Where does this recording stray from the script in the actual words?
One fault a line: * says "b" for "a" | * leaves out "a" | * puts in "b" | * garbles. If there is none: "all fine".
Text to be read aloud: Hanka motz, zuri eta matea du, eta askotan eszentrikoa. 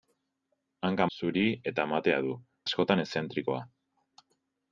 * leaves out "motz"
* leaves out "eta"